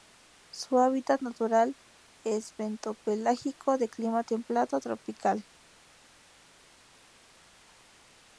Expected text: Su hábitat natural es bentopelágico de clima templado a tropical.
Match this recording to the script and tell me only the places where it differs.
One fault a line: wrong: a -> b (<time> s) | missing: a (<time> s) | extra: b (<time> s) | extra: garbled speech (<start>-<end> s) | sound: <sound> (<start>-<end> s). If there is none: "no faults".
no faults